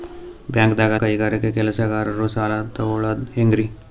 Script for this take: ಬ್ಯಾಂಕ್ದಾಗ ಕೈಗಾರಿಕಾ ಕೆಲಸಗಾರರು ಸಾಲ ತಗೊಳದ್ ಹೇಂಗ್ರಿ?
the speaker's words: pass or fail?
pass